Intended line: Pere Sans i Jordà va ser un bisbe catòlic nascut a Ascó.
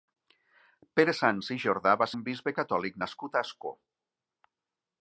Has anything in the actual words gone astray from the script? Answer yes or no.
yes